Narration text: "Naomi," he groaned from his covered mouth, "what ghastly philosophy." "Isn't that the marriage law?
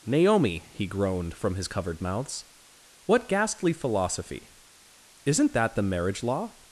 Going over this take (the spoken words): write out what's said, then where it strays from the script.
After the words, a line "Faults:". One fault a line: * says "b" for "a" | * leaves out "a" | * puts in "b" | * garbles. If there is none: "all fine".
"Naomi," he groaned from his covered mouths, "what ghastly philosophy." "Isn't that the marriage law?
Faults:
* says "mouths" for "mouth"